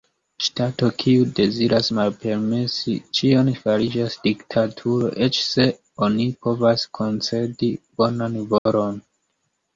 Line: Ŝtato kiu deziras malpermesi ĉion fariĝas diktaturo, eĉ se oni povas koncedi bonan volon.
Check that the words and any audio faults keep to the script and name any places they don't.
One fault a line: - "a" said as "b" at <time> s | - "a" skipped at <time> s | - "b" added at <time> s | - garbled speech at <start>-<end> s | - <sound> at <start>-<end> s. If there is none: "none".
- dropout at 8.6-8.7 s